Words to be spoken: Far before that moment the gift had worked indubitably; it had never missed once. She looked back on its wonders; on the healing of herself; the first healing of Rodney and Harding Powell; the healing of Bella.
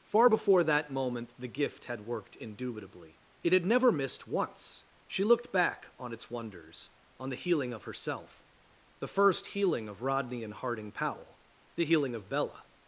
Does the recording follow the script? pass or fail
pass